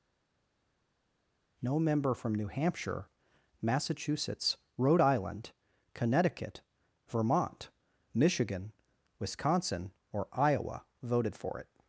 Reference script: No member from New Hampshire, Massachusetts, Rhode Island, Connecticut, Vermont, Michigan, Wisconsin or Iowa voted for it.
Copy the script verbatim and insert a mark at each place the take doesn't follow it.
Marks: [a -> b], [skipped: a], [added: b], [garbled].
No member from New Hampshire, Massachusetts, Rhode Island, Connecticut, Vermont, Michigan, Wisconsin or Iowa voted for it.